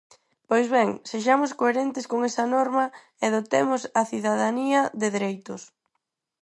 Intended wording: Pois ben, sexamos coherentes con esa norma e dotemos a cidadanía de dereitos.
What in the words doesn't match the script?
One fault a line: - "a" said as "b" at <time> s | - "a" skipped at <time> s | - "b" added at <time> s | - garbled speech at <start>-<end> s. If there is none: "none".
none